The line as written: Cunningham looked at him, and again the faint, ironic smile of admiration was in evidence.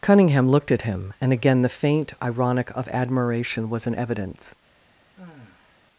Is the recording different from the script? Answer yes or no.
yes